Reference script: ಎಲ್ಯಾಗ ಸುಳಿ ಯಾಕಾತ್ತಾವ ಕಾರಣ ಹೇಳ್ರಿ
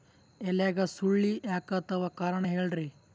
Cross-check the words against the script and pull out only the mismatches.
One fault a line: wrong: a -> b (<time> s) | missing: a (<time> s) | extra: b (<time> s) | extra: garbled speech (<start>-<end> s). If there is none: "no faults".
no faults